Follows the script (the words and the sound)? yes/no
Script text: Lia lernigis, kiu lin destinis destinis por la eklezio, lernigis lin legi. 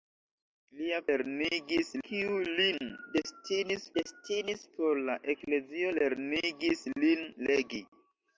yes